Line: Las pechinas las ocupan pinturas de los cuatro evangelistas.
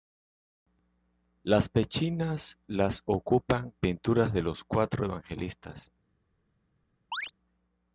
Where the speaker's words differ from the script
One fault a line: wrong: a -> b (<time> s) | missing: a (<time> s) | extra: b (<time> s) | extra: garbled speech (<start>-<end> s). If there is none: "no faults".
no faults